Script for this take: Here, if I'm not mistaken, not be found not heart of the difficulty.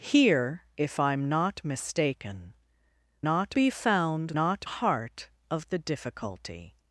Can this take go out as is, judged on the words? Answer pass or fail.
pass